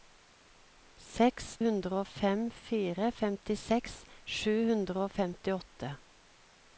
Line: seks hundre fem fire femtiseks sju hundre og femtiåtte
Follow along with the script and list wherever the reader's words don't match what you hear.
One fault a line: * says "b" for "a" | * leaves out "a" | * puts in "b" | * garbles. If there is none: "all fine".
all fine